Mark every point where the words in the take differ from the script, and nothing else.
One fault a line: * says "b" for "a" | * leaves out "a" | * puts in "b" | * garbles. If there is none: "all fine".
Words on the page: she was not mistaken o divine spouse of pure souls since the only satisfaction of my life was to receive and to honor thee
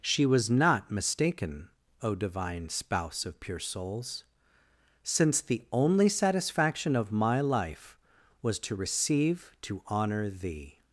* leaves out "and"